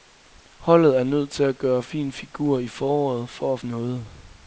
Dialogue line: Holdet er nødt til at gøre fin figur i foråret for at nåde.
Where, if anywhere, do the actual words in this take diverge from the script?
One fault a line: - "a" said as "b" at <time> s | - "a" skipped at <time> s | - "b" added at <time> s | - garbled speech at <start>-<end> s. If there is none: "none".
none